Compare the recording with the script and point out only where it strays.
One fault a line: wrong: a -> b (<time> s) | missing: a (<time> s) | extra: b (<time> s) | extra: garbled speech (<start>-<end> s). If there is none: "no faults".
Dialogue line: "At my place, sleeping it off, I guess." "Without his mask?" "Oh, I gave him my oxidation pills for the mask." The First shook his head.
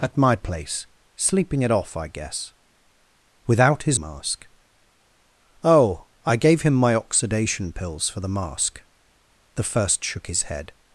no faults